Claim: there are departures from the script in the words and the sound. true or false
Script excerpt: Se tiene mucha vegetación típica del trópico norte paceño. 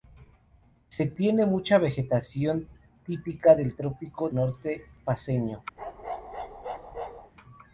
true